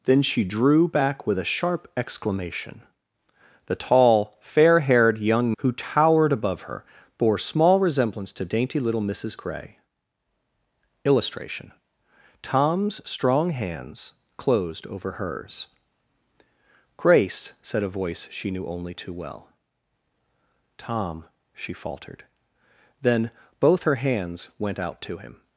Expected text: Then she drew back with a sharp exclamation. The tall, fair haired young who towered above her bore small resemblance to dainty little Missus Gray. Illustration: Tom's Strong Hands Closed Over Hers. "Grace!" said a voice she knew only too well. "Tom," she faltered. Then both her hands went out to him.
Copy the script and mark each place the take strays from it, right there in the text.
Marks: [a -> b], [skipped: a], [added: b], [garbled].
Then she drew back with a sharp exclamation. The tall, fair haired young who towered above her bore small resemblance to dainty little Missus Gray. Illustration: Tom's Strong Hands Closed Over Hers. "Grace!" said a voice she knew only too well. "Tom," she faltered. Then both her hands went out to him.